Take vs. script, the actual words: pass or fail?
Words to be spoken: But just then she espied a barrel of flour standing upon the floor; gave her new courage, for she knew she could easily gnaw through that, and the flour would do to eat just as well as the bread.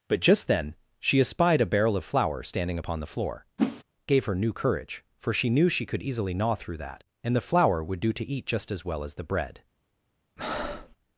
pass